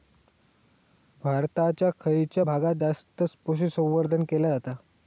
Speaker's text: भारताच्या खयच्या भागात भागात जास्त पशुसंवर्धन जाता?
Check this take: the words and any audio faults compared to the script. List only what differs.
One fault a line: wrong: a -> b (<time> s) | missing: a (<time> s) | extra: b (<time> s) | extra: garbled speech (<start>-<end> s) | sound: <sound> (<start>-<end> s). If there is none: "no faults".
missing: भागात (2.7 s)
extra: केला (4.2 s)